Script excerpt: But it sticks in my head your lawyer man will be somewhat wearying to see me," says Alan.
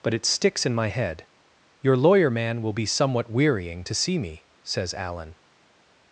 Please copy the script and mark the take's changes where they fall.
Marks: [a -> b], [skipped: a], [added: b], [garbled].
But it sticks in my head your lawyer man will be somewhat wearying to see me," says Alan.